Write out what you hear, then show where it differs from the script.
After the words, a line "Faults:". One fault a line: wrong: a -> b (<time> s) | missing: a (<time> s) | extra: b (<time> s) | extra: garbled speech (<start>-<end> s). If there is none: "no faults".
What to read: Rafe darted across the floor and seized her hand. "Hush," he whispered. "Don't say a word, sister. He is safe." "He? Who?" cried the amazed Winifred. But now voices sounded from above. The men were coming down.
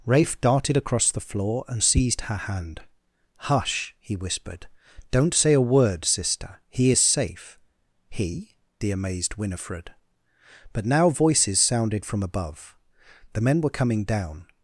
Rafe darted across the floor and seized her hand. "Hush," he whispered. "Don't say a word, sister. He is safe." "He? The amazed Winifred. But now voices sounded from above. The men were coming down.
Faults:
missing: Who cried (8.6 s)